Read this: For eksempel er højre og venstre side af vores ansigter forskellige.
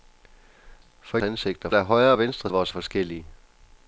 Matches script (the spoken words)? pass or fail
fail